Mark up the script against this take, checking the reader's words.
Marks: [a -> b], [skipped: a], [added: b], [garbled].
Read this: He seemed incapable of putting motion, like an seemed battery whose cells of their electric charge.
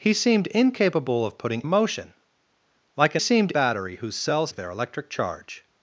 He seemed incapable of putting motion, like an seemed battery whose cells of their electric charge.